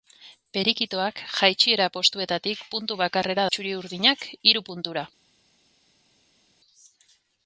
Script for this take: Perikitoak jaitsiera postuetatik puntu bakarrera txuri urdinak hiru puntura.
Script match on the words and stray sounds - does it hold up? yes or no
yes